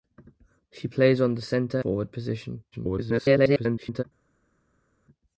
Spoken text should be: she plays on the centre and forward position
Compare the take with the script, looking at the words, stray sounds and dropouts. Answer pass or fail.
fail